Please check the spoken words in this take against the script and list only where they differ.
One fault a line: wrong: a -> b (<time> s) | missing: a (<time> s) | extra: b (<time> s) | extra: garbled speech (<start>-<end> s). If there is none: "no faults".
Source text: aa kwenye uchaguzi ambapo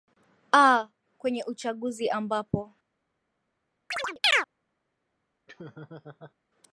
no faults